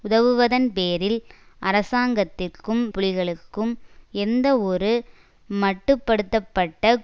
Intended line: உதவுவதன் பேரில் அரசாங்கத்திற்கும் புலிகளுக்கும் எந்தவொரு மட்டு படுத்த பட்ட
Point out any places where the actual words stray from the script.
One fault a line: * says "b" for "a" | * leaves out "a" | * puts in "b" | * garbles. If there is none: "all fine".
all fine